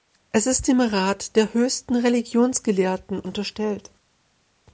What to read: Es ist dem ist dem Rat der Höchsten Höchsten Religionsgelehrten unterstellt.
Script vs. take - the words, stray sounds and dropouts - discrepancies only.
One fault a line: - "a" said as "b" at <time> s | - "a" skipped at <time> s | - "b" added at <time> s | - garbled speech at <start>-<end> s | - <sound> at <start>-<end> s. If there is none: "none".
- "ist dem" skipped at 0.8 s
- "Höchsten" skipped at 1.9 s